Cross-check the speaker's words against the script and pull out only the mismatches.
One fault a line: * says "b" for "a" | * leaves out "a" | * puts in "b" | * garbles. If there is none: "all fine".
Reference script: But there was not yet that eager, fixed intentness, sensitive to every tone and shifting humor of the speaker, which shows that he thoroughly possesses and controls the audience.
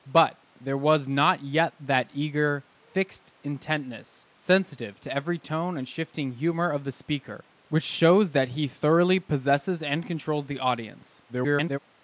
* garbles